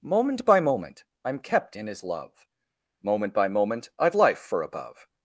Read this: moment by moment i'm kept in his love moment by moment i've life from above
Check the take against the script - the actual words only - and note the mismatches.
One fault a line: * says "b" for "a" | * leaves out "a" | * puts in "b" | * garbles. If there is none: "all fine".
* says "for" for "from"